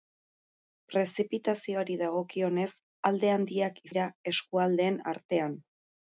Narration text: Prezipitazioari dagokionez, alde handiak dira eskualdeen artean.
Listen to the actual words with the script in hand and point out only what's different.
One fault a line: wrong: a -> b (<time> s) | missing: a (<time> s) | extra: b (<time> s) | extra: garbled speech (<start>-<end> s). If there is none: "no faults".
no faults